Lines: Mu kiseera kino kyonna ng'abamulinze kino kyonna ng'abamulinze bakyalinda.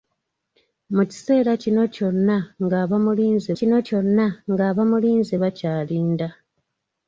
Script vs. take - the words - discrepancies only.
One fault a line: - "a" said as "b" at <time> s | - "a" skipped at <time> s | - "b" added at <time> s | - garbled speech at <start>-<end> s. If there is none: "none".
none